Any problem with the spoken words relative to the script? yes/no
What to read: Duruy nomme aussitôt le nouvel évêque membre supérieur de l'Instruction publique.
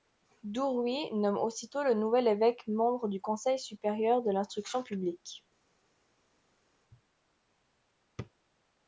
yes